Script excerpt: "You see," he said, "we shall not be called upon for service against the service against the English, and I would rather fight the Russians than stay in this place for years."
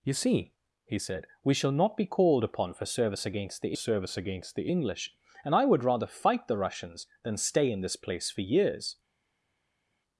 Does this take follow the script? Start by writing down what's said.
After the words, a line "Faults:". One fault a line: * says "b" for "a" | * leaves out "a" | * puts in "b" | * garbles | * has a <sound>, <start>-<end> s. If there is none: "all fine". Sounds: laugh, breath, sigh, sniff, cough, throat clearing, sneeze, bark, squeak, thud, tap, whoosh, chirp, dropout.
"You see," he said, "we shall not be called upon for service against the service against the English, and I would rather fight the Russians than stay in this place for years."
Faults:
all fine